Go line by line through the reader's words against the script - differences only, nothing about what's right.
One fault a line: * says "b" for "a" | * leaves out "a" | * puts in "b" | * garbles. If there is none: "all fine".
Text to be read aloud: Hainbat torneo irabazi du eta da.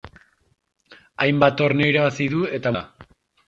all fine